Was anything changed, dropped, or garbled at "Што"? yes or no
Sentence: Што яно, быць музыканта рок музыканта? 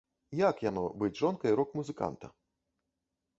yes